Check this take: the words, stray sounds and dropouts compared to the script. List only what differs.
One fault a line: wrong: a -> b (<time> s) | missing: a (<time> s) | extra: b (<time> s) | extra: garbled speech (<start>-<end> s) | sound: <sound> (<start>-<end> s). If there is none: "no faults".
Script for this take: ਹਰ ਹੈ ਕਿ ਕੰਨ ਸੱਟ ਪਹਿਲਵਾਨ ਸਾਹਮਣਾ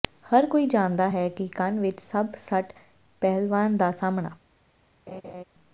extra: ਕੋਈ ਜਾਣਦਾ (0.5 s)
extra: ਵਿੱਚ ਸਭ (1.8 s)
extra: ਦਾ (3.8 s)
sound: laugh (5.1-5.4 s)